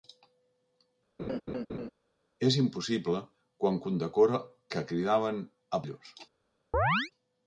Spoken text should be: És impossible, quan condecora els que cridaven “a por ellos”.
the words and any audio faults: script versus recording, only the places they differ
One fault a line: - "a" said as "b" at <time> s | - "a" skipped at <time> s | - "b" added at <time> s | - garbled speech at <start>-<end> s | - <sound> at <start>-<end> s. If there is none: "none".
- laugh at 1.2-1.9 s
- "els" skipped at 4.4 s
- "por" skipped at 5.9 s
- chirp at 6.7-7.1 s